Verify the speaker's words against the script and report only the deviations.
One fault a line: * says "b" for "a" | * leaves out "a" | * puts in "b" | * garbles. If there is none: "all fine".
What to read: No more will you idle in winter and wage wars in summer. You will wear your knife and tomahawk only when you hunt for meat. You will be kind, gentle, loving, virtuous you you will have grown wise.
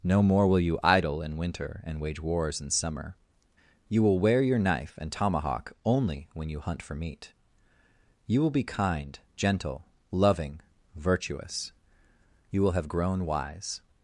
* leaves out "you"